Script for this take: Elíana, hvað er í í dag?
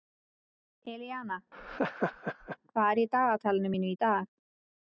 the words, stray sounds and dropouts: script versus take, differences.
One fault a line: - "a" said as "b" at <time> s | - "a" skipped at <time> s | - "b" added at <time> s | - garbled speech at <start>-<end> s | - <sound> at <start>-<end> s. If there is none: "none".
- laugh at 1.5-2.6 s
- "dagatalinu mínu" added at 3.1 s